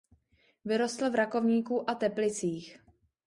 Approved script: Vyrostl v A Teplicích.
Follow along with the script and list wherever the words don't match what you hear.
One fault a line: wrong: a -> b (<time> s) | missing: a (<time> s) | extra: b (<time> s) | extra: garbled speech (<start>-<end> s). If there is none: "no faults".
extra: Rakovníku (1.1 s)